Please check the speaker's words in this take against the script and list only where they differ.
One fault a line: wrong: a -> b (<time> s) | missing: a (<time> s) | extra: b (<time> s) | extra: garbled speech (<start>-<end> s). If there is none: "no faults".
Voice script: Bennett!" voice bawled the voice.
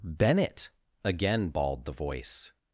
wrong: voice -> again (1.0 s)